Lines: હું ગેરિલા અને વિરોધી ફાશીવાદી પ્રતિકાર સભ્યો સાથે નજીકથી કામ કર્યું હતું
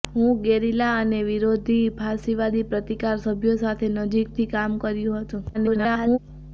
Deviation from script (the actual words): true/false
true